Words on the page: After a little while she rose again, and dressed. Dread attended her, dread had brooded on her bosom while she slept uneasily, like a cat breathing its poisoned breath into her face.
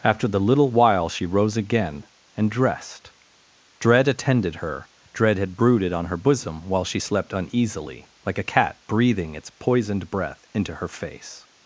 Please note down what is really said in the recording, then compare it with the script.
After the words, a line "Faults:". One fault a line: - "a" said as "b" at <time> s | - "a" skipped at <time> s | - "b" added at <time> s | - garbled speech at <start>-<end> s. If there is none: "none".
After the little while she rose again, and dressed. Dread attended her, dread had brooded on her bosom while she slept uneasily, like a cat breathing its poisoned breath into her face.
Faults:
- "a" said as "the" at 0.3 s